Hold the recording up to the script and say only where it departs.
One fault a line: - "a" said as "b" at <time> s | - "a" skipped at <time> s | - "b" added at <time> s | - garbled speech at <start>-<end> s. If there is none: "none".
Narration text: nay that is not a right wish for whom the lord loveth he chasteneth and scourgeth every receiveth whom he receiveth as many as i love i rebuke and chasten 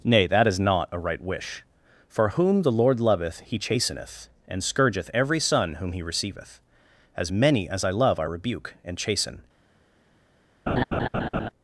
- "receiveth" said as "son" at 5.4 s